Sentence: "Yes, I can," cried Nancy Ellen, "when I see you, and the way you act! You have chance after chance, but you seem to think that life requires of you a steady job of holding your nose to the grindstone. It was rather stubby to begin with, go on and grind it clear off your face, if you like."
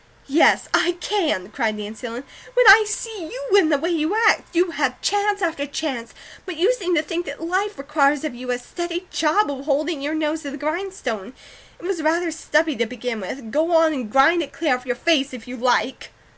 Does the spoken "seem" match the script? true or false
true